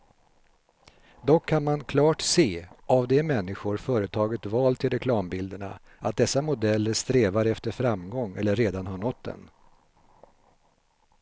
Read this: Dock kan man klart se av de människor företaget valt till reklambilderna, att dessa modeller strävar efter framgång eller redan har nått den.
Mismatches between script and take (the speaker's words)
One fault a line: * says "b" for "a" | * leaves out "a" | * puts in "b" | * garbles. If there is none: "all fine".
all fine